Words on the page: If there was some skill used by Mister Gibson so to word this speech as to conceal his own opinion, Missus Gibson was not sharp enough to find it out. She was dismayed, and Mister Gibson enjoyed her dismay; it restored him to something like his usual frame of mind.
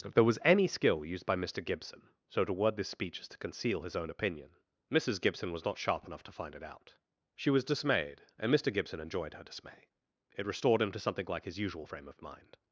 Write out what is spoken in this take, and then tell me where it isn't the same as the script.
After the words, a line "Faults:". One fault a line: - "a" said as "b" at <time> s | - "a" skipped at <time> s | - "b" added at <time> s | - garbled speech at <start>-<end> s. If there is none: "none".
If there was any skill used by Mister Gibson so to word this speech as to conceal his own opinion, Missus Gibson was not sharp enough to find it out. She was dismayed, and Mister Gibson enjoyed her dismay; it restored him to something like his usual frame of mind.
Faults:
- "some" said as "any" at 0.4 s